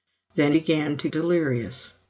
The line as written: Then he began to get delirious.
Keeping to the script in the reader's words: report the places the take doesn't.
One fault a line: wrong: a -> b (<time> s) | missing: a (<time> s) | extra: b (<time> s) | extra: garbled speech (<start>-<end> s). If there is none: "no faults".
missing: he (0.5 s)
missing: get (1.1 s)